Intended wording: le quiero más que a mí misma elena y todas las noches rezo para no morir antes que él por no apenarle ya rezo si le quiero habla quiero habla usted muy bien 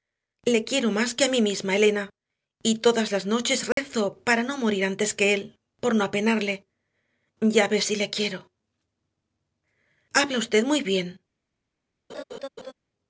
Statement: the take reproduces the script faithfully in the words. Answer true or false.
false